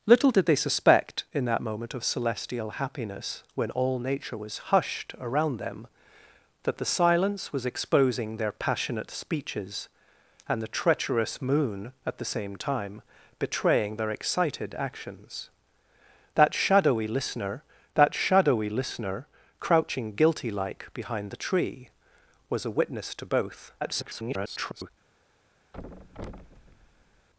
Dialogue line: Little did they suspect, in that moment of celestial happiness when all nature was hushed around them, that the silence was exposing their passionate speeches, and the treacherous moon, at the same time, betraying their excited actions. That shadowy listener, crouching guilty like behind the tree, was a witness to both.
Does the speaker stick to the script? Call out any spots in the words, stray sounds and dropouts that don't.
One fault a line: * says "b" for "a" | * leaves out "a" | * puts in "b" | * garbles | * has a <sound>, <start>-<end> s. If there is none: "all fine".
* puts in "that shadowy listener"
* garbles
* has a thud, 25.7-27.3 s